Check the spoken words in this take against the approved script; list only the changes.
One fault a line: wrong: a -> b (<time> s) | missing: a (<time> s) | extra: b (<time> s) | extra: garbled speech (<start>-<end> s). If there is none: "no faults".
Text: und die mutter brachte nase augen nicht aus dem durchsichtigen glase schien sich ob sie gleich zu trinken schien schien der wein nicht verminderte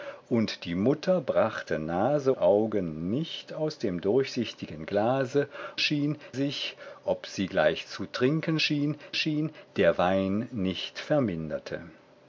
no faults